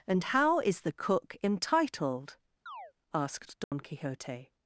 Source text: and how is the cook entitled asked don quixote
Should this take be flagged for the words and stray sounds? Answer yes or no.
yes